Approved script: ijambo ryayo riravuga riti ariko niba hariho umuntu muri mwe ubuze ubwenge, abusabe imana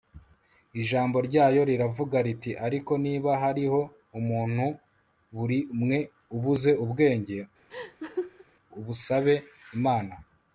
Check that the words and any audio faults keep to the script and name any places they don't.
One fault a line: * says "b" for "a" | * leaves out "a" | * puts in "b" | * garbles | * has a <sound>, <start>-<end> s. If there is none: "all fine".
* has a laugh, 7.7-8.4 s